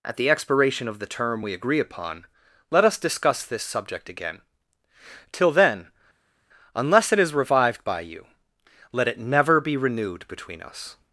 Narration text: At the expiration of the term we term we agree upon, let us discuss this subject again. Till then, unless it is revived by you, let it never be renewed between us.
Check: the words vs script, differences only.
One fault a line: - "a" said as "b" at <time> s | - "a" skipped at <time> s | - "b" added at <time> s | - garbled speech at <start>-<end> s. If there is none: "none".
- "term we" skipped at 1.5 s